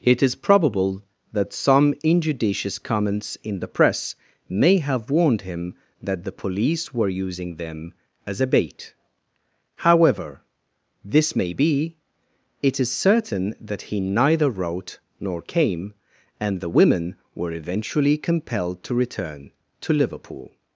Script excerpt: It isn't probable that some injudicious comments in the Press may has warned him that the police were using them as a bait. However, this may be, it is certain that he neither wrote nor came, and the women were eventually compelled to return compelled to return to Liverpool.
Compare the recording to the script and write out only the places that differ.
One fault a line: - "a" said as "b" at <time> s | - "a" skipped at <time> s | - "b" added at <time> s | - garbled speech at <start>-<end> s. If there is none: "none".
- "isn't" said as "is" at 0.2 s
- "has" said as "have" at 4.8 s
- "compelled to return" skipped at 19.5 s